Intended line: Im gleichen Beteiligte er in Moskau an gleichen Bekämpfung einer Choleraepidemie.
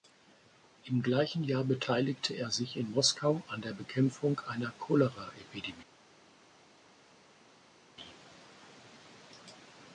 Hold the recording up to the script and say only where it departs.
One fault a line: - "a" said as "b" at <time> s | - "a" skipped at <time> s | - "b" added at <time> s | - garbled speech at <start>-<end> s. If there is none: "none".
- "Jahr" added at 1.4 s
- "sich" added at 2.5 s
- "gleichen" said as "der" at 3.6 s